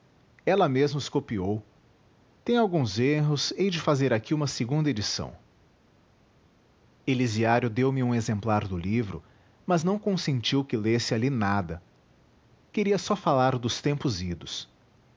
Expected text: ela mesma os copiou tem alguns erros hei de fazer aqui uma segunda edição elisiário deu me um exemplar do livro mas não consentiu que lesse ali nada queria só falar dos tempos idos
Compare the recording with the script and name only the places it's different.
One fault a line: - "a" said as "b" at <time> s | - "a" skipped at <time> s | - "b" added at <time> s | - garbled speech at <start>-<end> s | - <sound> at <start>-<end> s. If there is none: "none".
none